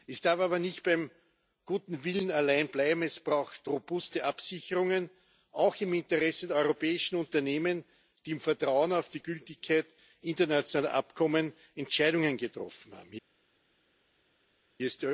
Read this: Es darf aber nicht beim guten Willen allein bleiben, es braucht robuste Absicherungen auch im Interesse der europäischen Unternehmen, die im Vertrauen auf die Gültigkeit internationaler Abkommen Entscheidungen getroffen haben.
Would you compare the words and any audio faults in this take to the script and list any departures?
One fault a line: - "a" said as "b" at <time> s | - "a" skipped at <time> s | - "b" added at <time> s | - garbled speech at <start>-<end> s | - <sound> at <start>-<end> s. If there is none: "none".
none